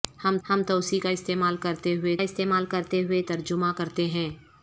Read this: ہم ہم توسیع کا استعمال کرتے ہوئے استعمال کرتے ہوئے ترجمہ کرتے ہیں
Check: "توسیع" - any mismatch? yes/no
no